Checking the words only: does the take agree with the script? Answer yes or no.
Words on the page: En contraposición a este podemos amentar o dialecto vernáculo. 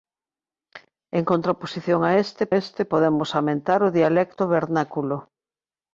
no